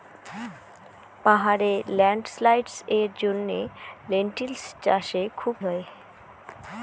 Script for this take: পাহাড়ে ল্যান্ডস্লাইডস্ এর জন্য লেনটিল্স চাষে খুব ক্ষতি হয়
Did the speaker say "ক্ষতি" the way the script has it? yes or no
no